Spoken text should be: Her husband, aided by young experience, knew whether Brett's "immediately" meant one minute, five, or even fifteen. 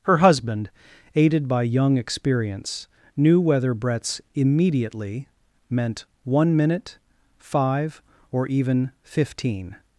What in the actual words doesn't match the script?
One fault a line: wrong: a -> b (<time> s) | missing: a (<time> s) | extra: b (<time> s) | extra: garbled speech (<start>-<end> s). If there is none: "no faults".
no faults